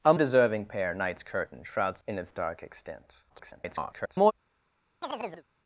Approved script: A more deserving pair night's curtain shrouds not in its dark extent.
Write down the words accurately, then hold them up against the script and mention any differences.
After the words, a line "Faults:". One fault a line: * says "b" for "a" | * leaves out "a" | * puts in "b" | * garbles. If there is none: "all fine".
A deserving pair night's curtain shrouds in its dark extent. [garbled]
Faults:
* leaves out "more"
* leaves out "not"
* garbles